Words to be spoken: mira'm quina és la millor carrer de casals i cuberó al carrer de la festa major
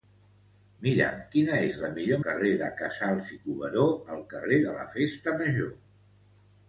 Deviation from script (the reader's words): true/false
false